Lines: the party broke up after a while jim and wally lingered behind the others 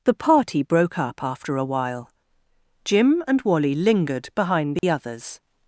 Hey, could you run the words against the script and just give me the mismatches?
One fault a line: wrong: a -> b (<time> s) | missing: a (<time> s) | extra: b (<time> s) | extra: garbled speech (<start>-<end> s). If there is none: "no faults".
no faults